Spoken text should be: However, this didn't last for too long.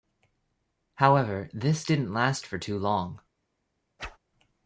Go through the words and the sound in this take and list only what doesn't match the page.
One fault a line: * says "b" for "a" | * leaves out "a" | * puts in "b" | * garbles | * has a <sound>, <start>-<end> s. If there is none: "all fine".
* has a whoosh, 4.0-4.2 s